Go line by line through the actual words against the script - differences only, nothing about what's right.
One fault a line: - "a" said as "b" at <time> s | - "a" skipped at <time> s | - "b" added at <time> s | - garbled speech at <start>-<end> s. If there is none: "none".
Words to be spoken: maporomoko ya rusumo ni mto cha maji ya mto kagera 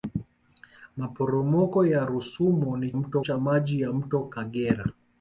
none